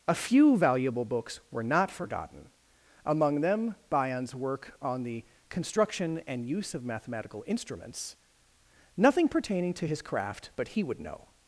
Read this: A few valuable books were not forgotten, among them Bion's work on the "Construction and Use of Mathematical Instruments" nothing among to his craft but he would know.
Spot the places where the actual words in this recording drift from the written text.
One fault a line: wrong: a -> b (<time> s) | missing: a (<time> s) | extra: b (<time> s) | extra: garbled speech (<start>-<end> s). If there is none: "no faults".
wrong: among -> pertaining (9.3 s)